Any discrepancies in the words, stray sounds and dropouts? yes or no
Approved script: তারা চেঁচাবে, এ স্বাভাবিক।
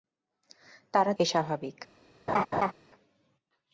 yes